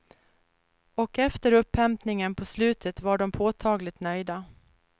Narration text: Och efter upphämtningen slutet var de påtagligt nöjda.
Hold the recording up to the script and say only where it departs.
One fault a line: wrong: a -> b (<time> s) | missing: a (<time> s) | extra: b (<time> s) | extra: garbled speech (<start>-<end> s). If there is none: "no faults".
extra: på (2.4 s)